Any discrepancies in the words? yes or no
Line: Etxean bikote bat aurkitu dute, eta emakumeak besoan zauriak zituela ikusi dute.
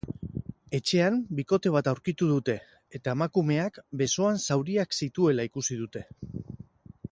no